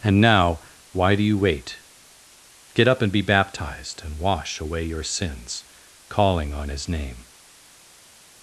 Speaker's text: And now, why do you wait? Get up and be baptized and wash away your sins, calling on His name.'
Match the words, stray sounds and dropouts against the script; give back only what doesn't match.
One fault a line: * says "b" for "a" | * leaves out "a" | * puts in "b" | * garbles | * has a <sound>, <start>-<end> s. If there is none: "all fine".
all fine